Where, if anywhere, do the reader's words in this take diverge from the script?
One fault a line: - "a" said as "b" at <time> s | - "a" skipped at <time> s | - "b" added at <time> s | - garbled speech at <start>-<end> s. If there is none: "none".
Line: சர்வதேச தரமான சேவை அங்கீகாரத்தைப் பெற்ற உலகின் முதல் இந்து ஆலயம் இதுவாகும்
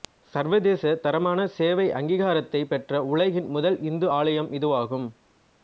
none